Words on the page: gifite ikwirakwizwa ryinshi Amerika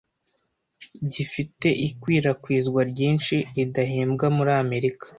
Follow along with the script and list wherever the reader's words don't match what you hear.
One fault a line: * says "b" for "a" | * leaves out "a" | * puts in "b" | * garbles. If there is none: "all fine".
* puts in "ridahembwa muri"